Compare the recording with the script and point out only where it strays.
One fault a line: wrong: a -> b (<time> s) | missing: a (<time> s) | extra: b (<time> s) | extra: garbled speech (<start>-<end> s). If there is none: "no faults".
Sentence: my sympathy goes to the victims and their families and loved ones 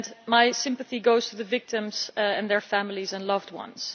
no faults